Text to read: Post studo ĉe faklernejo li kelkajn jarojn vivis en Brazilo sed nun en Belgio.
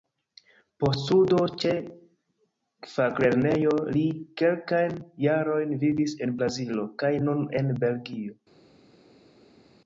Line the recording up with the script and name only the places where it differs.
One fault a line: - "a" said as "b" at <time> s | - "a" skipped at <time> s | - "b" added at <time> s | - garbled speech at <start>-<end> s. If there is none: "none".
- "sed" said as "kaj" at 7.0 s